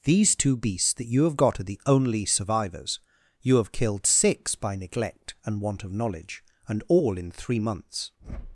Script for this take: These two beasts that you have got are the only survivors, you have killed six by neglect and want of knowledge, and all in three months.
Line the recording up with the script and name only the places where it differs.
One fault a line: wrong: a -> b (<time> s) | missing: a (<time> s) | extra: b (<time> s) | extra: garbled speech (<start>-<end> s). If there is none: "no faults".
no faults